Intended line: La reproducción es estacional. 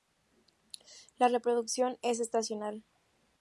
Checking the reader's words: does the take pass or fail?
pass